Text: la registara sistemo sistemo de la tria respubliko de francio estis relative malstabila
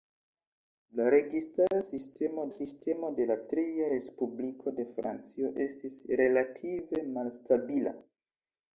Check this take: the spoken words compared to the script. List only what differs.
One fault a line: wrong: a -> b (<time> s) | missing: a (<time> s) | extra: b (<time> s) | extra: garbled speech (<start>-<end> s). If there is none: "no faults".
no faults